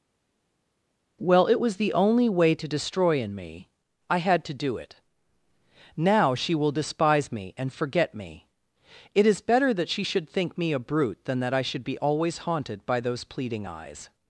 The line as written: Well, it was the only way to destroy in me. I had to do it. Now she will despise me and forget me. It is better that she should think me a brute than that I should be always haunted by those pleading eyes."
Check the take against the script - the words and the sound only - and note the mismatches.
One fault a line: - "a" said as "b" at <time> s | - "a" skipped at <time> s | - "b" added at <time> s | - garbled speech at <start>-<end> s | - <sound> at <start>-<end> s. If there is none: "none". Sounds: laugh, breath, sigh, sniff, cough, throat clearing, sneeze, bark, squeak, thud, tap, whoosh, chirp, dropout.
none